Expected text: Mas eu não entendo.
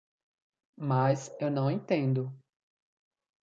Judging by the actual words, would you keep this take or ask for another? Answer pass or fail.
pass